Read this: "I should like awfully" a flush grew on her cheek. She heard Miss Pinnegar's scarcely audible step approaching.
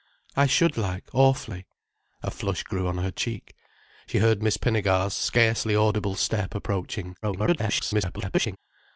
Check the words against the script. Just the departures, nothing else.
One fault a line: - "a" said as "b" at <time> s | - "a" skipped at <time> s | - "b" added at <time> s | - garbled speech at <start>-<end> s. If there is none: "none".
- garbled speech at 7.2-8.6 s